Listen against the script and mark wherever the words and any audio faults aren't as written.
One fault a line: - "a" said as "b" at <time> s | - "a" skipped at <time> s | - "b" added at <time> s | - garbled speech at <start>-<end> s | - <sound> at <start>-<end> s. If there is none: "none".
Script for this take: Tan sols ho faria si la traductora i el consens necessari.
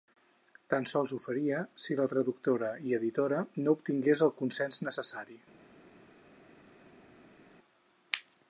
- "editora no obtingués" added at 3.0 s